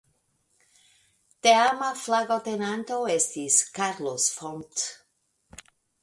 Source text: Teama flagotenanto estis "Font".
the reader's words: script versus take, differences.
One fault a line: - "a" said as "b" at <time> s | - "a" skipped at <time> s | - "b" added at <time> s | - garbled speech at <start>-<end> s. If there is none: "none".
- "Carlos" added at 3.8 s